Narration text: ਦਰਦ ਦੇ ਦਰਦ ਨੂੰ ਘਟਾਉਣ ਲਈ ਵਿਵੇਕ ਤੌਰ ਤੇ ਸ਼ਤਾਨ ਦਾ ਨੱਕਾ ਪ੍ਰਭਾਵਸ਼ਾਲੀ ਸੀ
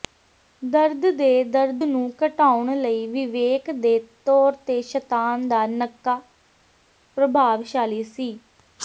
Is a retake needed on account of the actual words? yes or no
yes